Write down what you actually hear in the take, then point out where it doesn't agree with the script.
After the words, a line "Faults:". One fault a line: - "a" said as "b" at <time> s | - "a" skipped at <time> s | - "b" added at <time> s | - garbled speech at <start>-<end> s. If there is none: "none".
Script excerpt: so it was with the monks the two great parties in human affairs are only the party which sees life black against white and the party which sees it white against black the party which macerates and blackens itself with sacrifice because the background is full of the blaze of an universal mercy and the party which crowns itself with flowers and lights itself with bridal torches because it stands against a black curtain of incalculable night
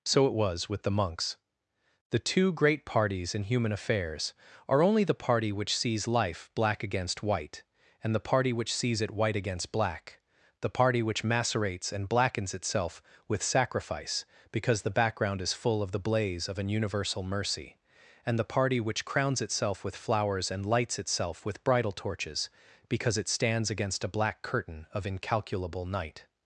so it was with the monks the two great parties in human affairs are only the party which sees life black against white and the party which sees it white against black the party which macerates and blackens itself with sacrifice because the background is full of the blaze of an universal mercy and the party which crowns itself with flowers and lights itself with bridal torches because it stands against a black curtain of incalculable night
Faults:
none